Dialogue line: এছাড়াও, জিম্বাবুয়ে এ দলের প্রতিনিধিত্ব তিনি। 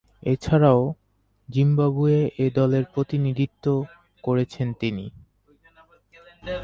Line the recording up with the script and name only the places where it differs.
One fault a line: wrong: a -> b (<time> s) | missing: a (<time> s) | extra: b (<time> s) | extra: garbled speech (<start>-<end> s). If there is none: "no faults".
extra: করেছেন (4.2 s)